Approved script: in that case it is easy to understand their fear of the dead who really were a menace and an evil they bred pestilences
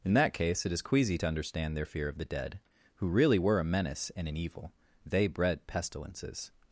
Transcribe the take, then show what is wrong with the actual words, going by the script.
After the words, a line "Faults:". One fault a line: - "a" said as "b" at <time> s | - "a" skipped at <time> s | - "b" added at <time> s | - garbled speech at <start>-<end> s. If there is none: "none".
in that case it is queasy to understand their fear of the dead who really were a menace and an evil they bred pestilences
Faults:
- "easy" said as "queasy" at 0.8 s